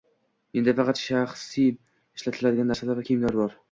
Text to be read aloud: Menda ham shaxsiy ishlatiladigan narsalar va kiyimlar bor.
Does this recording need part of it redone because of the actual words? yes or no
yes